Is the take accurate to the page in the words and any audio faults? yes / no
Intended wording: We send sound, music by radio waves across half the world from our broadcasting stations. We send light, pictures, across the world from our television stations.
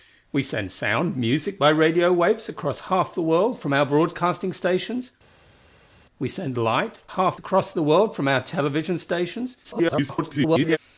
no